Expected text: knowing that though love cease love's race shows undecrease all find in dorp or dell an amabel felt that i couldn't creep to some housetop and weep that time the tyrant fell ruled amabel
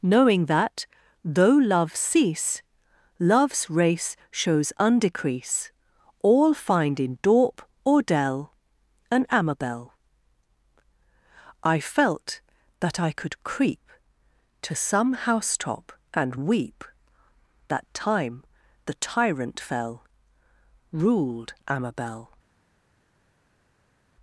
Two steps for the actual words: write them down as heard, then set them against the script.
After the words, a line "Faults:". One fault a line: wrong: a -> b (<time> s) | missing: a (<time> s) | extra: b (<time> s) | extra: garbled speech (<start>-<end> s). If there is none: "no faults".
knowing that though love cease love's race shows undecrease all find in dorp or dell an amabel i felt that i could creep to some housetop and weep that time the tyrant fell ruled amabel
Faults:
extra: i (11.6 s)
wrong: couldn't -> could (13.1 s)